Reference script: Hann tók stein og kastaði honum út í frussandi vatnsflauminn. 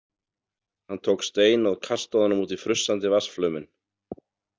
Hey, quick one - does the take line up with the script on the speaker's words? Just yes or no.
yes